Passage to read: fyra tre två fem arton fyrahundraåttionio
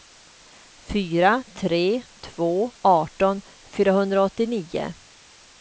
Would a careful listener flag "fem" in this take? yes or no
yes